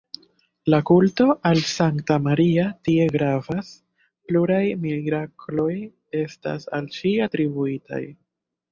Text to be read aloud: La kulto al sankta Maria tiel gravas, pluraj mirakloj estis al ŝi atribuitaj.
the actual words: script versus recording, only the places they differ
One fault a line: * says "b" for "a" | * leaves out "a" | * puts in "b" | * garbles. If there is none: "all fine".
* says "tie" for "tiel"
* says "estas" for "estis"